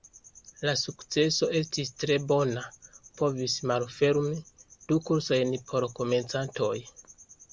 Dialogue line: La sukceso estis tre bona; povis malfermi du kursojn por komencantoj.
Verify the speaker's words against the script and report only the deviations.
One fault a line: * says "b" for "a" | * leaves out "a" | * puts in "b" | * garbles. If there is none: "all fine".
all fine